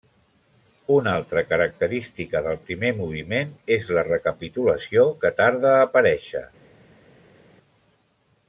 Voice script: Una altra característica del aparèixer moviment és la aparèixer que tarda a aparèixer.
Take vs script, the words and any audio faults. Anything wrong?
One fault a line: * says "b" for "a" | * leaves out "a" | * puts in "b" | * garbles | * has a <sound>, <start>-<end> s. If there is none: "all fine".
* says "primer" for "aparèixer"
* says "recapitulació" for "aparèixer"